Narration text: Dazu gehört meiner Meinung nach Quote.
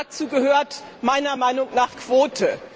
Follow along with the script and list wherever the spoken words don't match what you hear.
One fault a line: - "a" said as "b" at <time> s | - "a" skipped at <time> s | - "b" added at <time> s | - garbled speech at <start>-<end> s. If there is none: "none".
none